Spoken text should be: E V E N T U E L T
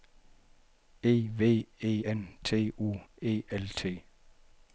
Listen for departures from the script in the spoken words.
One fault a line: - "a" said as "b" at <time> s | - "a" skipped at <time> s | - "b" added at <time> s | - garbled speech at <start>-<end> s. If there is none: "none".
none